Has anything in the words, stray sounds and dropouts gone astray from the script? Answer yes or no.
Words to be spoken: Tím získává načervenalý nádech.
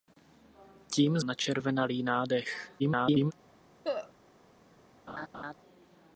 yes